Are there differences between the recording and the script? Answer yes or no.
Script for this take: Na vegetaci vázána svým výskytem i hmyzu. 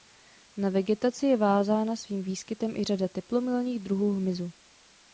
yes